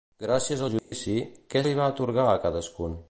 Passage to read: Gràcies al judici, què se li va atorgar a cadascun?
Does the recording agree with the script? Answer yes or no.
no